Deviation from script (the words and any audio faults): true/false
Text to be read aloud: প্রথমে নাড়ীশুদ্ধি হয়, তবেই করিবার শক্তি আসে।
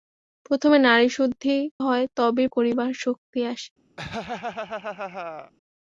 true